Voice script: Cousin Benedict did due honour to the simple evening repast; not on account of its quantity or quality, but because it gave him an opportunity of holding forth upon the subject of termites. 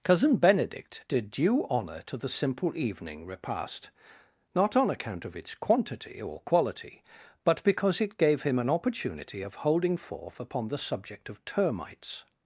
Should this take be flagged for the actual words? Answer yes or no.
no